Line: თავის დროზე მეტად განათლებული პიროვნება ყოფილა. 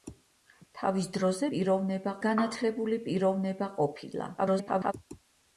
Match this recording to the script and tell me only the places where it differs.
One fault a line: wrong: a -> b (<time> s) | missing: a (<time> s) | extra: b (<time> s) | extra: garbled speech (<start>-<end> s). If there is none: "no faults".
wrong: მეტად -> პიროვნება (1.5 s)
extra: garbled speech (4.4-4.9 s)